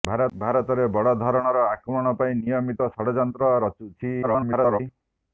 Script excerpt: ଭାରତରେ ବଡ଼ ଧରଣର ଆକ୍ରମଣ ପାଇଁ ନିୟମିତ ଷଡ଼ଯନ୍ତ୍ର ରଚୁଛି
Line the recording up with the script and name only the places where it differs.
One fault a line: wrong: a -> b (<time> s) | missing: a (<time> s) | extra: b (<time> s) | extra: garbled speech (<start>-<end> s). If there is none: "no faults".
extra: garbled speech (4.2-4.8 s)